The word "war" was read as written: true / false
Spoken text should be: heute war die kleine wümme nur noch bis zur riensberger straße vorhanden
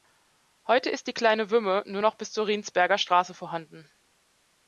false